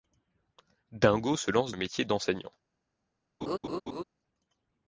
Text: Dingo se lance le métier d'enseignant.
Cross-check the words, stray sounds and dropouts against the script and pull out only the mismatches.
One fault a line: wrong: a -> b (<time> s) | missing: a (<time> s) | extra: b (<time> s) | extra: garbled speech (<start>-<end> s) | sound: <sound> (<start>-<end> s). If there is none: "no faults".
sound: laugh (3.4-4.0 s)